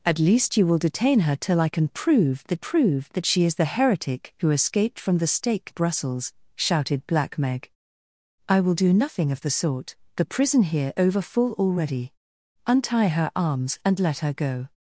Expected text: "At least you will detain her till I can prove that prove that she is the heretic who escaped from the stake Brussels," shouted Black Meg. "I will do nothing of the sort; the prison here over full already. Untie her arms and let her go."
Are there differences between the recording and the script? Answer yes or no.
no